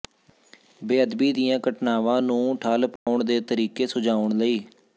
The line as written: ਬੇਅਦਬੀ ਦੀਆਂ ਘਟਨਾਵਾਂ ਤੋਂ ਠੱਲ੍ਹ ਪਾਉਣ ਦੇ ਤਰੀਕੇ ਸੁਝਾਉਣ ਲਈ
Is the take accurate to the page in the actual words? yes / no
no